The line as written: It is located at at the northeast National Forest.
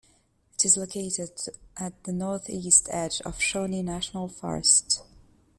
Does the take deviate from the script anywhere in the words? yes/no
yes